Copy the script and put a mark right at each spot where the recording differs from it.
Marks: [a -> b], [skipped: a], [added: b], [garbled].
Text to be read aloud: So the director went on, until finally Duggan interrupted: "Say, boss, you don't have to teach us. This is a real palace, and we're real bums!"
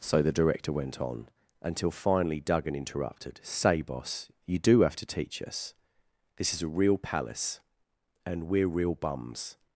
So the director went on, until finally Duggan interrupted: "Say, boss, you [don't -> do] have to teach us. This is a real palace, and we're real bums!"